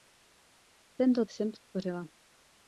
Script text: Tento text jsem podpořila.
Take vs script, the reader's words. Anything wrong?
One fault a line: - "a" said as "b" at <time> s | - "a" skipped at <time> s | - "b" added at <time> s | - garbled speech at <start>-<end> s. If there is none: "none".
- "text" skipped at 1.2 s